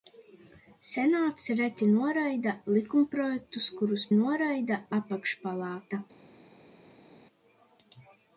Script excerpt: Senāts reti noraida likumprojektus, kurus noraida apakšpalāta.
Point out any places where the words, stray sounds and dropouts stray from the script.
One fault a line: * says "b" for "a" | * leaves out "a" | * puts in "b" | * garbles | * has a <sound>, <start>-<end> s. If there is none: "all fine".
all fine